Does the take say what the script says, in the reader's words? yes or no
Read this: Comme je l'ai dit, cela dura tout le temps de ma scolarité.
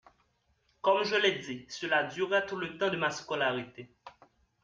yes